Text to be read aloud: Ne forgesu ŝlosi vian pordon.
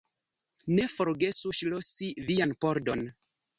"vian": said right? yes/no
yes